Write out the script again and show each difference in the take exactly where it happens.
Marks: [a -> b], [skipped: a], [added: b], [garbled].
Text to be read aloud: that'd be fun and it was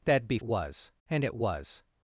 that'd be [fun -> was] and it was